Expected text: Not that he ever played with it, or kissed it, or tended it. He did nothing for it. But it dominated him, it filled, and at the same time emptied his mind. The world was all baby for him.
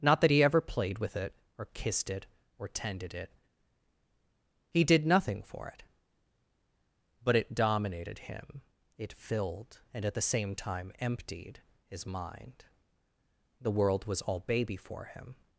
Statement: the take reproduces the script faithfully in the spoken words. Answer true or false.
true